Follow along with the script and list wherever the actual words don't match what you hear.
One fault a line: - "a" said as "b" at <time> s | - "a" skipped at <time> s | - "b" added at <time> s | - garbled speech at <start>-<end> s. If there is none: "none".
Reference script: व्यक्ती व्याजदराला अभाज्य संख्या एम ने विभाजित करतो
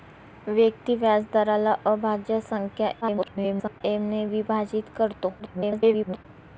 - garbled speech at 3.0-3.8 s
- garbled speech at 5.4-6.3 s